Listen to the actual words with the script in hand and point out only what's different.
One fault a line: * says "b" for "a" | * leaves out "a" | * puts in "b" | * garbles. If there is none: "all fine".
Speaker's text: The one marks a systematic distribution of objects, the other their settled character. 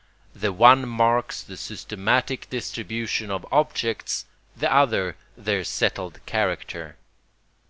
* says "the" for "a"